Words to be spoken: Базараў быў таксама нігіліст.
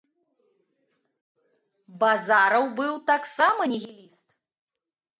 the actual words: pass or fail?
pass